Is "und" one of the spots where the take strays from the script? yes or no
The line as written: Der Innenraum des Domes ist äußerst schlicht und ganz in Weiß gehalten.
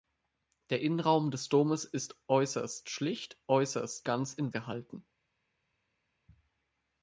yes